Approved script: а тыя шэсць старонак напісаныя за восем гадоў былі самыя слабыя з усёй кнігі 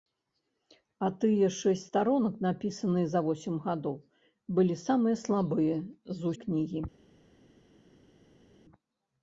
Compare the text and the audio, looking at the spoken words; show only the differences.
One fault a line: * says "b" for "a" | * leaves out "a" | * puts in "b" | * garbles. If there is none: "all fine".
* leaves out "усёй"